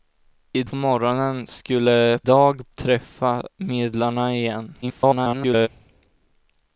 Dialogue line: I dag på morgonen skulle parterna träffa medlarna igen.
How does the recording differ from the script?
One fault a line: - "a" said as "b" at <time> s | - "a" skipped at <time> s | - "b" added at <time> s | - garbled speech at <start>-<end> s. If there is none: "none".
- "dag" skipped at 0.6 s
- "parterna" said as "dag" at 2.2 s
- garbled speech at 4.8-5.7 s